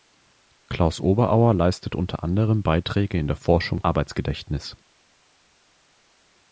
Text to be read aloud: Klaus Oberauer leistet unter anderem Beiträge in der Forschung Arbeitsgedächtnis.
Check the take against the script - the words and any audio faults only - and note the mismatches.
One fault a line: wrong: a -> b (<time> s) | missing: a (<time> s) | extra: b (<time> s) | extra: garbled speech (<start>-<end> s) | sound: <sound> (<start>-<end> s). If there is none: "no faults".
no faults